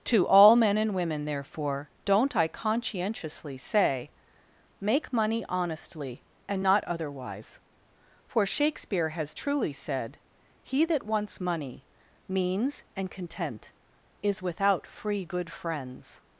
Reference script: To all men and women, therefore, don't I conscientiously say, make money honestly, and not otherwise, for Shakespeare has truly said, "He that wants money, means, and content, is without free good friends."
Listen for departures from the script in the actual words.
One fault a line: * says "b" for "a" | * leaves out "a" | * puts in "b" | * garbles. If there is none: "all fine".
all fine